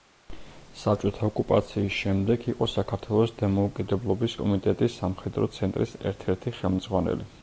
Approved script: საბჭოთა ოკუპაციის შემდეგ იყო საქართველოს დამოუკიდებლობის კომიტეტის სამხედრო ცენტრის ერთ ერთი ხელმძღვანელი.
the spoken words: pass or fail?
pass